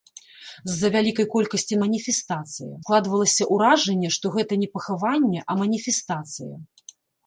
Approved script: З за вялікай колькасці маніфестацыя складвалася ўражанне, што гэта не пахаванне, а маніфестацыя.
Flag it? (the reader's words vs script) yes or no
no